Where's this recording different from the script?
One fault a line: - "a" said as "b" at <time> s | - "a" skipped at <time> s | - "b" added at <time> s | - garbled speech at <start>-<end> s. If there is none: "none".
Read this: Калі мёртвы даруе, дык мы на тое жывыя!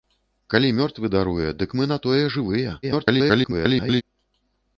- garbled speech at 2.8-4.0 s